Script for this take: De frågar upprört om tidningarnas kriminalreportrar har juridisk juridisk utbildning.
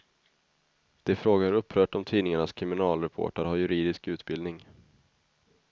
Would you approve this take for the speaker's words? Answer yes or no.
no